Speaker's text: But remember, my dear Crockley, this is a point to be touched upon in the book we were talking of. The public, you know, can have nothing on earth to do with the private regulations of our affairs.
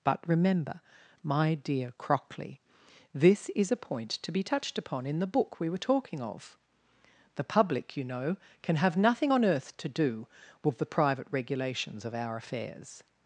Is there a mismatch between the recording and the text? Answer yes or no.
no